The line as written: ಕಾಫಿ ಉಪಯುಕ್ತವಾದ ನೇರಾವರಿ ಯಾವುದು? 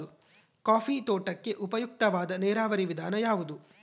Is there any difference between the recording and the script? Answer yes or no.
yes